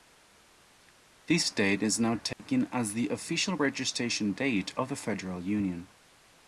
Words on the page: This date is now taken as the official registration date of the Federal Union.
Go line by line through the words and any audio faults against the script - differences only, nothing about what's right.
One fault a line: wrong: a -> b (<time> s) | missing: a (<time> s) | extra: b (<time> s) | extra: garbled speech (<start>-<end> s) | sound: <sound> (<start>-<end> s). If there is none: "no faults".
sound: dropout (2.3-2.4 s)